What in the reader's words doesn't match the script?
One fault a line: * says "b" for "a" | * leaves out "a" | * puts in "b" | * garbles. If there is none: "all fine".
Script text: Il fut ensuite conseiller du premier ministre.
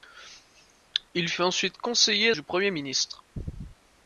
all fine